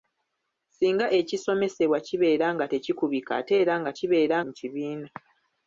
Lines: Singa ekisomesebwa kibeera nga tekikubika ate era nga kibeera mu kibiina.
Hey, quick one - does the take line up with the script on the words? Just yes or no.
yes